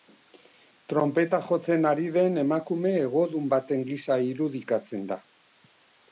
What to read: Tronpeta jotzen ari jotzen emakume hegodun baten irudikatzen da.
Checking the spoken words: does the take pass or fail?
fail